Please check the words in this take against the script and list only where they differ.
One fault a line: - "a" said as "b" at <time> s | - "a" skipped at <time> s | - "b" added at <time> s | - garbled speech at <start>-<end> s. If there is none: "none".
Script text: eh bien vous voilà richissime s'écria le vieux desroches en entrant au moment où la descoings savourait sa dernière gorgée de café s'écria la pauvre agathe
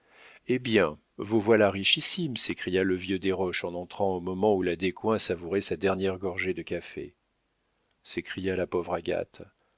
none